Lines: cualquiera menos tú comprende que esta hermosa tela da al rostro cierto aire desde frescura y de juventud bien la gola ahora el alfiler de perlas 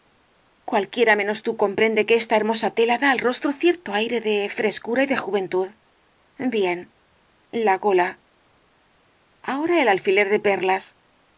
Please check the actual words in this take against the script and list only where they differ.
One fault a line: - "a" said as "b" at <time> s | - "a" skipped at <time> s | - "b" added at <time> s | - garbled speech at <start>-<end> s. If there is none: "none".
- "desde" said as "de" at 4.2 s